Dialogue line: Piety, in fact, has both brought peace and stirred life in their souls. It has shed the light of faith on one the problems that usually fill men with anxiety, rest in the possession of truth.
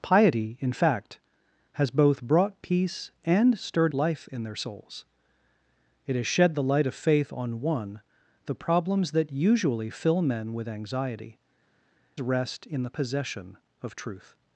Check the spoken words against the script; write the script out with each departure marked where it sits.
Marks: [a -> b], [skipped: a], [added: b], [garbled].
Piety, in fact, has both brought peace and stirred life in their souls. It has shed the light of faith on one the problems that usually fill men with anxiety, rest in the possession of truth.